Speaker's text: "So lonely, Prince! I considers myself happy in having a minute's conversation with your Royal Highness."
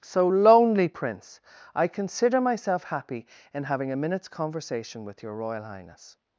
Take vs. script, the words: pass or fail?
fail